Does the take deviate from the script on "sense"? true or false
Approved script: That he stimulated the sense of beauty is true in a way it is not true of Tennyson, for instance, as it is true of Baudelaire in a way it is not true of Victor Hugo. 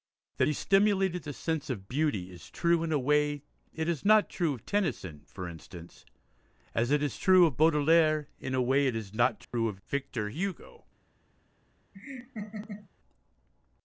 false